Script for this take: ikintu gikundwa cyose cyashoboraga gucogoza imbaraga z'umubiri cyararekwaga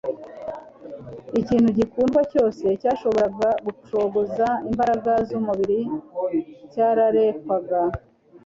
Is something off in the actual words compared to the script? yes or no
no